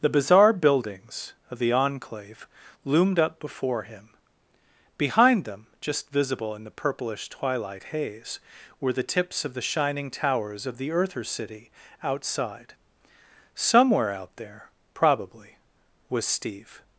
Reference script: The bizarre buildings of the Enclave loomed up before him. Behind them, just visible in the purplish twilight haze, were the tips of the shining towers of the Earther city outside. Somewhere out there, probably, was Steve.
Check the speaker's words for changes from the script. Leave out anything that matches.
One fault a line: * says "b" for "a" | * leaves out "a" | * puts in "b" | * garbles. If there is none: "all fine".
all fine